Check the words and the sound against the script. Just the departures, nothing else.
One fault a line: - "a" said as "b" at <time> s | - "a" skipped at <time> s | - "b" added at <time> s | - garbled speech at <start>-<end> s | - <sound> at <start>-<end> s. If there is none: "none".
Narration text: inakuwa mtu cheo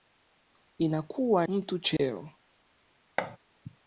- dropout at 2.0-2.0 s
- thud at 3.2-3.4 s